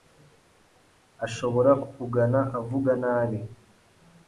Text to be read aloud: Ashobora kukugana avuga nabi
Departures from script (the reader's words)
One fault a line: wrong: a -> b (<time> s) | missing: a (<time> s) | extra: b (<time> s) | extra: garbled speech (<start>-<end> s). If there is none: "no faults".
no faults